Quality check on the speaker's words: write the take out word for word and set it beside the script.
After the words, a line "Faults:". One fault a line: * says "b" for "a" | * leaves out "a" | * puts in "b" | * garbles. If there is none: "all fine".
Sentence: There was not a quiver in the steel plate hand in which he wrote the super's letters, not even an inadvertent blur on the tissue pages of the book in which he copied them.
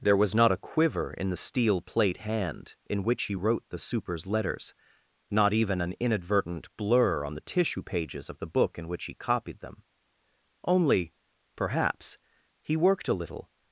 There was not a quiver in the steel plate hand in which he wrote the super's letters, not even an inadvertent blur on the tissue pages of the book in which he copied them. Only, perhaps, he worked a little
Faults:
* puts in "Only perhaps he worked a little"